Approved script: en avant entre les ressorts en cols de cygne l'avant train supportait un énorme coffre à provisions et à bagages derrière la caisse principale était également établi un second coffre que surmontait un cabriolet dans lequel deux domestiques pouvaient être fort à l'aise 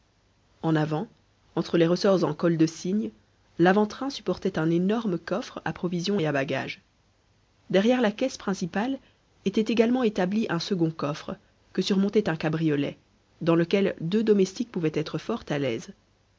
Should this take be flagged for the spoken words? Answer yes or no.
no